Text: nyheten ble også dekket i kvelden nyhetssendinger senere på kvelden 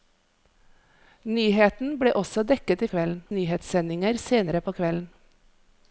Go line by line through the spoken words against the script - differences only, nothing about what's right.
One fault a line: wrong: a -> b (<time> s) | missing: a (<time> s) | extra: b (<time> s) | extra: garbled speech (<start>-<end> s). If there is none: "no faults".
no faults